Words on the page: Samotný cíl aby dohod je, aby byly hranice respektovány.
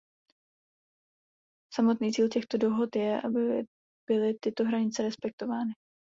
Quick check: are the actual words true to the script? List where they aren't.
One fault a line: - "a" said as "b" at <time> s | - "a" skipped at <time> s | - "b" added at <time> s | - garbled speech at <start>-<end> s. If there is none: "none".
- "aby" said as "těchto" at 2.3 s
- "tyto" added at 4.4 s